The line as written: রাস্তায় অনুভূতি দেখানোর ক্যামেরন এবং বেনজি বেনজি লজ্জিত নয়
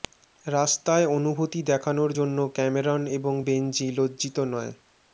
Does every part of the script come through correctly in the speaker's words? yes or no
no